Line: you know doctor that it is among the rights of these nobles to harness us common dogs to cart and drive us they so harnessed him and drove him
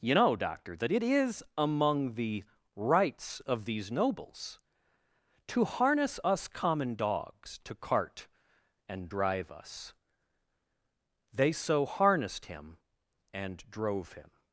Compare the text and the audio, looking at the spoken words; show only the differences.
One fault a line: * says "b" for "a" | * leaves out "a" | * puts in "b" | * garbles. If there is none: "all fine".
all fine